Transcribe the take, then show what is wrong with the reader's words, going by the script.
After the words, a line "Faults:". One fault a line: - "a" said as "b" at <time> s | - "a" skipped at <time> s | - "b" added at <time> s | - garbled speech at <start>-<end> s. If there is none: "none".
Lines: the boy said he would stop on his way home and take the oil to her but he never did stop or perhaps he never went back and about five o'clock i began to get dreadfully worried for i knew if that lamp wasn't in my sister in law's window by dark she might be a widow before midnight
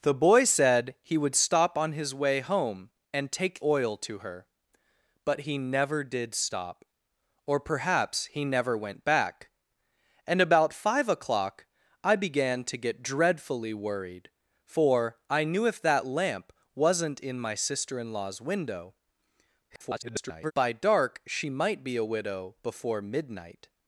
the boy said he would stop on his way home and take oil to her but he never did stop or perhaps he never went back and about five o'clock i began to get dreadfully worried for i knew if that lamp wasn't in my sister in law's window [garbled] by dark she might be a widow before midnight
Faults:
- "the" skipped at 3.6 s
- garbled speech at 19.7-20.5 s